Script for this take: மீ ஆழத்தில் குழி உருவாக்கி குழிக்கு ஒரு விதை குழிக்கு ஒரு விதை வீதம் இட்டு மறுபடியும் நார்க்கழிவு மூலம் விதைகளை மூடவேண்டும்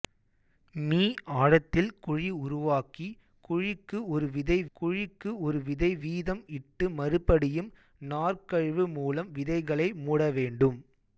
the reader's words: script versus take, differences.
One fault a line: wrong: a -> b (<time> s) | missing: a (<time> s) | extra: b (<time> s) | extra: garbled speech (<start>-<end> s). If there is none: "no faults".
no faults